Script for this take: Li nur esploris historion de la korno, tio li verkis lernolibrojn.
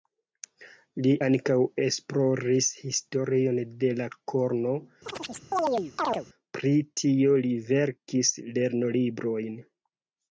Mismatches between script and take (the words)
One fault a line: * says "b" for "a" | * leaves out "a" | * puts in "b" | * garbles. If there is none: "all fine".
* says "ankaŭ" for "nur"
* puts in "pri"